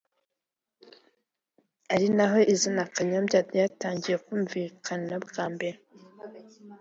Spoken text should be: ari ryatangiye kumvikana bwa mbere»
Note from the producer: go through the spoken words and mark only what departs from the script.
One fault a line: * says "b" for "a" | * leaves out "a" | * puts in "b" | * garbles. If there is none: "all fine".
* puts in "naho izina Kanyombya"